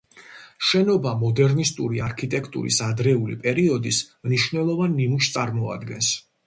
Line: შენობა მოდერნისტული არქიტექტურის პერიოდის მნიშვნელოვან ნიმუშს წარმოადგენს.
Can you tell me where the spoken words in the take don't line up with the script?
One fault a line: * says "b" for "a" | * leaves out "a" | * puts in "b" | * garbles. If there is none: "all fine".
* puts in "ადრეული"